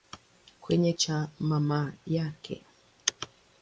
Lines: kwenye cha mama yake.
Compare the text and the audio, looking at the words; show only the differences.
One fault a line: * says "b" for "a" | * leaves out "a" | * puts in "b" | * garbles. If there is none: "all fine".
all fine